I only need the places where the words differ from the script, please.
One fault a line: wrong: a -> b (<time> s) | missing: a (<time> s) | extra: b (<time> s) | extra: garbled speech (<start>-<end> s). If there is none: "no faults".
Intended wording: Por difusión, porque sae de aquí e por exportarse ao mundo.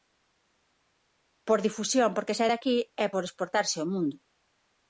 no faults